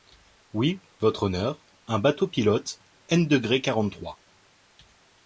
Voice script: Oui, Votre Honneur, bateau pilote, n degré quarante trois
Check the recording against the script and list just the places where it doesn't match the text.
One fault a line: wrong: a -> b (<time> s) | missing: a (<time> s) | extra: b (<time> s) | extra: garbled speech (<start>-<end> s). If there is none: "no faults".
extra: un (1.9 s)